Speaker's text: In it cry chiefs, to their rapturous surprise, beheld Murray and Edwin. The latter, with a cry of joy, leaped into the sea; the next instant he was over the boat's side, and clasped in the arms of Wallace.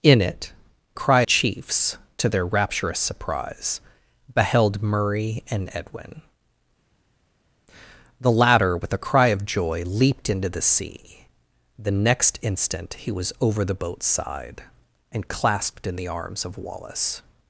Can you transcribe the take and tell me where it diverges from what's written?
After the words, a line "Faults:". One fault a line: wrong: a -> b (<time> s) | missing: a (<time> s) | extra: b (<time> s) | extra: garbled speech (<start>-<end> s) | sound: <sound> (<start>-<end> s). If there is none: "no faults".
In it cry chiefs, to their rapturous surprise, beheld Murray and Edwin. The latter, with a cry of joy, leaped into the sea; the next instant he was over the boat's side, and clasped in the arms of Wallace.
Faults:
no faults